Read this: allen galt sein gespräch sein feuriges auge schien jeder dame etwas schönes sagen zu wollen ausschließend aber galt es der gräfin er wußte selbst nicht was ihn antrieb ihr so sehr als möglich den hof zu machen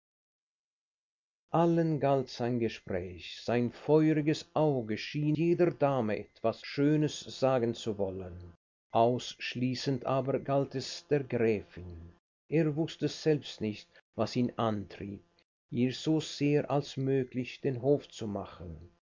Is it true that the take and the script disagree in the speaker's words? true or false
false